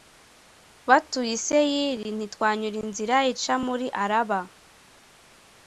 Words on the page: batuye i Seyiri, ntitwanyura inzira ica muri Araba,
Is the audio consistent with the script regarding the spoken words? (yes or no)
yes